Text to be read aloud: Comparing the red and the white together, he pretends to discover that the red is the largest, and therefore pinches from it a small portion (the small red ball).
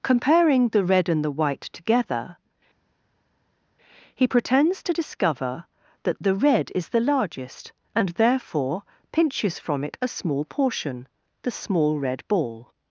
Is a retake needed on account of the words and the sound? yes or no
no